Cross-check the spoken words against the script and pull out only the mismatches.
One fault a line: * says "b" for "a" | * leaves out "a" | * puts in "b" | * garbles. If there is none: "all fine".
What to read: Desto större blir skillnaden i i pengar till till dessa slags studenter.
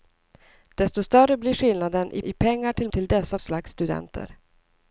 all fine